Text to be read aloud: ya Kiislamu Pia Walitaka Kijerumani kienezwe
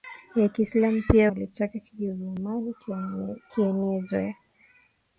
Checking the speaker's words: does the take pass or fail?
pass